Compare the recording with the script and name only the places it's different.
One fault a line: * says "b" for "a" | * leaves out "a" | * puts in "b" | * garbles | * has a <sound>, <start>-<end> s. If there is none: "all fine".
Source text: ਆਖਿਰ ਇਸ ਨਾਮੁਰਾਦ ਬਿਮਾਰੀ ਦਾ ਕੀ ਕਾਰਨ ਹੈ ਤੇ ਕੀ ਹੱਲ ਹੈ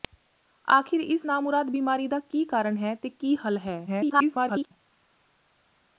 * garbles